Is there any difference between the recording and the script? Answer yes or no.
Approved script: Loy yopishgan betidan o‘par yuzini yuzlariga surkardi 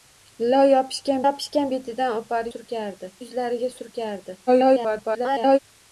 yes